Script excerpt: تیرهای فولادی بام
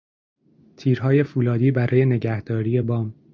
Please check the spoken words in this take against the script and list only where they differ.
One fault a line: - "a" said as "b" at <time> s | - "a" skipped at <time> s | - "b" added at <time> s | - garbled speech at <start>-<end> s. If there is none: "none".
- "برای نگهداری" added at 1.7 s